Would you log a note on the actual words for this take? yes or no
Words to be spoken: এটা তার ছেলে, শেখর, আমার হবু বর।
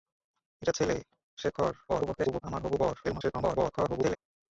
yes